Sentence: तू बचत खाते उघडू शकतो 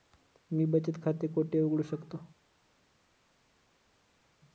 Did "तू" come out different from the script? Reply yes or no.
yes